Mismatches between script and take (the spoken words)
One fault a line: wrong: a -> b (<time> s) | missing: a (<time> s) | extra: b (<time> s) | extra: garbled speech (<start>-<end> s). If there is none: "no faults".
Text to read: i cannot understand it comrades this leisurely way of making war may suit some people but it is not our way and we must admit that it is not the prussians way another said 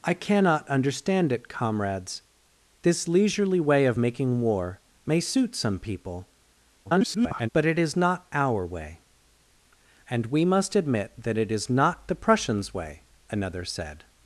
extra: garbled speech (6.8-7.5 s)